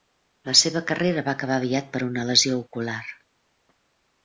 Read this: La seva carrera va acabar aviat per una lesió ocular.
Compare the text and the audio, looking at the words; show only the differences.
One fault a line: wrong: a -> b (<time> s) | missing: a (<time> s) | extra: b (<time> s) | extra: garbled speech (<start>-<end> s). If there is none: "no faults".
no faults